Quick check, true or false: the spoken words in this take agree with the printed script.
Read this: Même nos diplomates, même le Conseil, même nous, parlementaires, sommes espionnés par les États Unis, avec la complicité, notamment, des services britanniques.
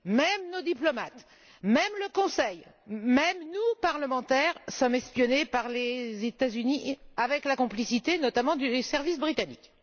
true